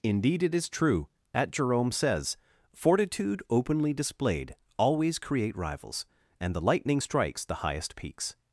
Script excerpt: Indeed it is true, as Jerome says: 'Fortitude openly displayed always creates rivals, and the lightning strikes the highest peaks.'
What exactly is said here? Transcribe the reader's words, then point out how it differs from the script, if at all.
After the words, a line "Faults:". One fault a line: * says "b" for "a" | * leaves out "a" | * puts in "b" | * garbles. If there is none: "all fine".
Indeed it is true, at Jerome says: 'Fortitude openly displayed always create rivals, and the lightning strikes the highest peaks.'
Faults:
* says "at" for "as"
* says "create" for "creates"